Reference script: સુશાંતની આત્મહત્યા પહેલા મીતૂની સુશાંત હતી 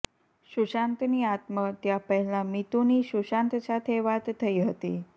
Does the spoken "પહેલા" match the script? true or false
true